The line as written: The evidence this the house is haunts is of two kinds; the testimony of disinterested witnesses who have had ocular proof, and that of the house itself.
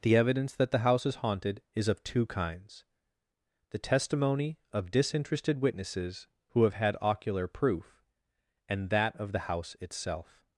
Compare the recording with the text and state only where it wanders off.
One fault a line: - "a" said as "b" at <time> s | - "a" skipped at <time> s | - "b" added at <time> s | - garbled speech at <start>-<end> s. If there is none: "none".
- "this" said as "that" at 0.6 s
- "haunts" said as "haunted" at 1.1 s